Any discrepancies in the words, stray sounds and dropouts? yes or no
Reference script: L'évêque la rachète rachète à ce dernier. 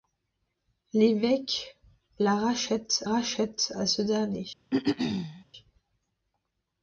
yes